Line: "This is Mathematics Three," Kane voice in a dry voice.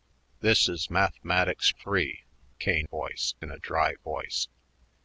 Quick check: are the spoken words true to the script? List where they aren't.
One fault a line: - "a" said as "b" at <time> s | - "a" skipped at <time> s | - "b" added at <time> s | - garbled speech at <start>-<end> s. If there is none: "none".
none